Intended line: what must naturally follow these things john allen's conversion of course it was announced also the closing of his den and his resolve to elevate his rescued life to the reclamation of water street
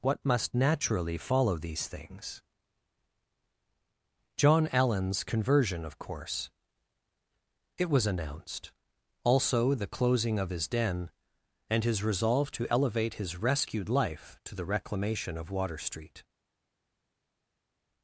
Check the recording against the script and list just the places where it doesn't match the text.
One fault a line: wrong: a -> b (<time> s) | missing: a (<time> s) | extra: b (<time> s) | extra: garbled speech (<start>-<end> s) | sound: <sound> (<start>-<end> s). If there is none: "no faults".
no faults